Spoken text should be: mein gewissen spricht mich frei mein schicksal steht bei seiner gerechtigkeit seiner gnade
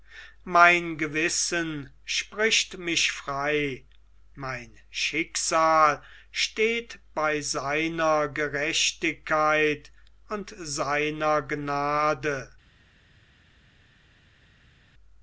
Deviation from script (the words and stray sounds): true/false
true